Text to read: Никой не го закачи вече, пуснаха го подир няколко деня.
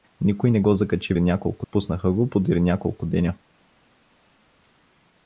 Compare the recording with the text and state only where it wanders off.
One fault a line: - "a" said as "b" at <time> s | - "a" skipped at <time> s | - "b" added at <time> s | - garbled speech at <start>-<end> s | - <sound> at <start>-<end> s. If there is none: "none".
- "вече" said as "няколко" at 1.2 s